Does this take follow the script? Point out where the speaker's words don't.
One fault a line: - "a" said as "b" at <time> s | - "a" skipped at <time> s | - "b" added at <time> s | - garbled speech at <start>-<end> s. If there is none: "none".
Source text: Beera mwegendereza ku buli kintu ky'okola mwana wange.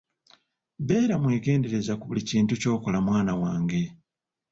none